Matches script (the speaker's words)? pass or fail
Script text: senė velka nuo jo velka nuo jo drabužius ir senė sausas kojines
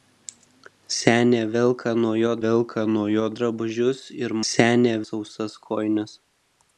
pass